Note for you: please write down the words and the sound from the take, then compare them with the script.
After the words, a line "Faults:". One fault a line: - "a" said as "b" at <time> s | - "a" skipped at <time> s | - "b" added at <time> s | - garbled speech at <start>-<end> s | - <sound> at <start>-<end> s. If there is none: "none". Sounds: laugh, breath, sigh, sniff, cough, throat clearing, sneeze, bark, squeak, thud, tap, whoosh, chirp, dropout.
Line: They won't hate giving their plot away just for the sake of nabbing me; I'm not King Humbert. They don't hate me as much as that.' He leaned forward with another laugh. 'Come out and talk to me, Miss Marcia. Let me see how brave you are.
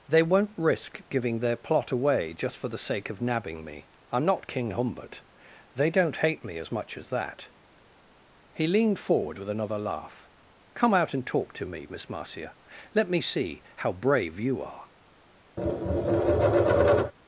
They won't risk giving their plot away just for the sake of nabbing me; I'm not King Humbert. They don't hate me as much as that.' He leaned forward with another laugh. 'Come out and talk to me, Miss Marcia. Let me see how brave you are.
Faults:
- "hate" said as "risk" at 0.6 s
- tap at 15.6-17.1 s